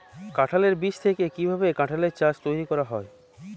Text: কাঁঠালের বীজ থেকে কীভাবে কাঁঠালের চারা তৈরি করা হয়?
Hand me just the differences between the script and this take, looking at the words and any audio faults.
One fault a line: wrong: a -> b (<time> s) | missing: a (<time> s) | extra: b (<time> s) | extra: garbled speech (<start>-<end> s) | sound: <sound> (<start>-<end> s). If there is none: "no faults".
no faults